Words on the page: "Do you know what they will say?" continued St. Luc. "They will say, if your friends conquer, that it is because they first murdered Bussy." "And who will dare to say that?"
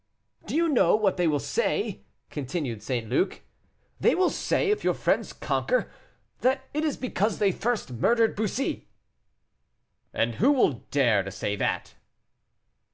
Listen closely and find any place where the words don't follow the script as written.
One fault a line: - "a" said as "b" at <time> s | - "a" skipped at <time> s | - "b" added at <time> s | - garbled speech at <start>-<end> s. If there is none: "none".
none